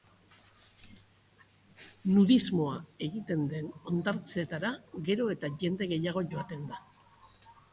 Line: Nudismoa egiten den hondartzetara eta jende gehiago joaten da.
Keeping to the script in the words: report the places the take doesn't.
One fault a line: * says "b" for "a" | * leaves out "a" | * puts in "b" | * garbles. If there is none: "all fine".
* puts in "gero"